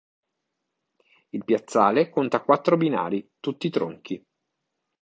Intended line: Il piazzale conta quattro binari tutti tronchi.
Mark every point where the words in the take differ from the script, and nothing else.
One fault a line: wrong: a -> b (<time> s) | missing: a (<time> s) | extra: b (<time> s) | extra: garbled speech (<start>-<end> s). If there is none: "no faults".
no faults